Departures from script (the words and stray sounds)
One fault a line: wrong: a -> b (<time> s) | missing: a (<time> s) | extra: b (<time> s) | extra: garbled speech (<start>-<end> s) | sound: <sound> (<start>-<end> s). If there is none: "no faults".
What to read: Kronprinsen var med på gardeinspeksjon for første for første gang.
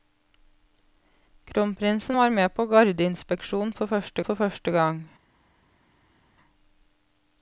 no faults